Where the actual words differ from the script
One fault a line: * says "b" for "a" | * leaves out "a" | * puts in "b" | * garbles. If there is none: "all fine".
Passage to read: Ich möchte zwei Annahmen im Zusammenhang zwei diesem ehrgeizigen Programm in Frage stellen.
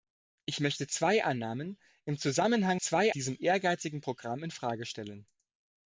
all fine